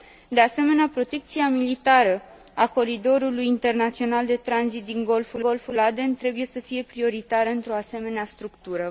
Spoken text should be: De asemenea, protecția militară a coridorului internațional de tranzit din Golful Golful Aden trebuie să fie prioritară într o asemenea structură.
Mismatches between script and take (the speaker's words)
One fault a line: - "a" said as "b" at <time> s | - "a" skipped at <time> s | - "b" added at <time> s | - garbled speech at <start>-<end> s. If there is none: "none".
none